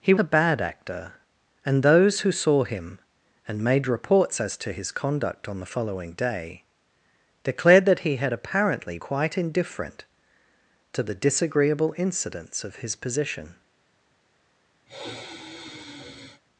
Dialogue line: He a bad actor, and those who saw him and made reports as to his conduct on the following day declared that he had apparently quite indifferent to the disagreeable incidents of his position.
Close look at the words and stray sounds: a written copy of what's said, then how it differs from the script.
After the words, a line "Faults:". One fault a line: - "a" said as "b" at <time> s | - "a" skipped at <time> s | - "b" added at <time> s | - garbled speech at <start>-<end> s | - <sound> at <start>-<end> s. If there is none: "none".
He a bad actor, and those who saw him and made reports as to his conduct on the following day declared that he had apparently quite indifferent to the disagreeable incidents of his position.
Faults:
- sigh at 14.9-16.4 s